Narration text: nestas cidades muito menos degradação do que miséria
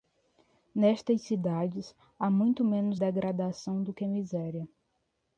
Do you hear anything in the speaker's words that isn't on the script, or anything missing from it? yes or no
yes